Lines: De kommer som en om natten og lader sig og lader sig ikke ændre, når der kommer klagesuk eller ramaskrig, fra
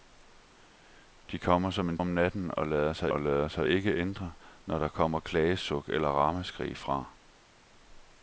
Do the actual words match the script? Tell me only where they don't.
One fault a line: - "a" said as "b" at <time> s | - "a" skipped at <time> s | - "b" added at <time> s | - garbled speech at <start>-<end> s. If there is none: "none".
none